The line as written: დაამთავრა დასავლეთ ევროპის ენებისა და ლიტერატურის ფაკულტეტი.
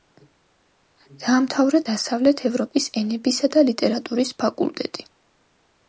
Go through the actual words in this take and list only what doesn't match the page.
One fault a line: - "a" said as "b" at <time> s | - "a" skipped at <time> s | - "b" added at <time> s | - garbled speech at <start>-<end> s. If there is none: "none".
none